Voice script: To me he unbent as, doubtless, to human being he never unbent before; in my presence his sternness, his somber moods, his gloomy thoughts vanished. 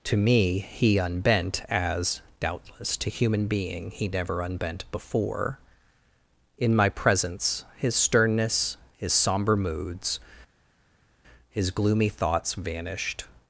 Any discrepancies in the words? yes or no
no